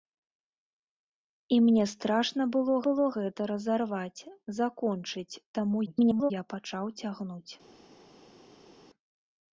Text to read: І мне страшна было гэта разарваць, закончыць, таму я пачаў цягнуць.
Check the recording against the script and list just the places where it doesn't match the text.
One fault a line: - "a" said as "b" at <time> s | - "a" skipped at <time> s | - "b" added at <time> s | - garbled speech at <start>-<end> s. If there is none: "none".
- "было" added at 2.9 s
- garbled speech at 5.9-6.3 s